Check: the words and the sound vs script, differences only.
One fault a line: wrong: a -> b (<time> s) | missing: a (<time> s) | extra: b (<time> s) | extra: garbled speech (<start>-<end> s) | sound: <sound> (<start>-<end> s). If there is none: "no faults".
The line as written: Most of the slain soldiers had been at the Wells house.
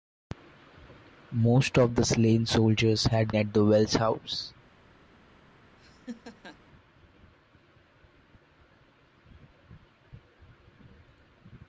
missing: been (3.3 s)
sound: laugh (5.8-6.6 s)